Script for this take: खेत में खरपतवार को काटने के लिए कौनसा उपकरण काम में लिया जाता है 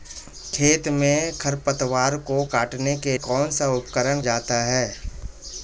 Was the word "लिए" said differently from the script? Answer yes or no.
yes